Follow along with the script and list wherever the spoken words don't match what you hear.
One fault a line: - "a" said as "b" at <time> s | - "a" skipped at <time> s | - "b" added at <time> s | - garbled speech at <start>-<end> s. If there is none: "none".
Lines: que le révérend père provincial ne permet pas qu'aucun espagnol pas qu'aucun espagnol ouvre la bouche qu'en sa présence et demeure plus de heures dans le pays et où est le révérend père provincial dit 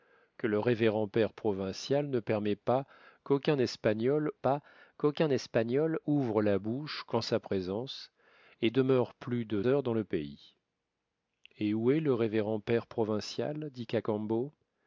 none